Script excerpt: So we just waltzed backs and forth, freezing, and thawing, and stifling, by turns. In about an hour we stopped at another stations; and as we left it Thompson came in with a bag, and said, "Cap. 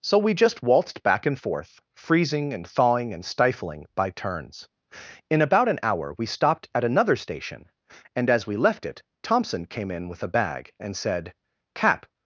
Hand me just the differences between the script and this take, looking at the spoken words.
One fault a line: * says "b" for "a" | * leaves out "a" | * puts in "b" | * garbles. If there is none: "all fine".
* says "back" for "backs"
* says "station" for "stations"